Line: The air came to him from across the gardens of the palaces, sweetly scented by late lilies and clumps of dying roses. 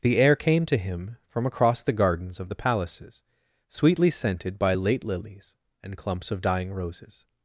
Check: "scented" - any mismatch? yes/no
no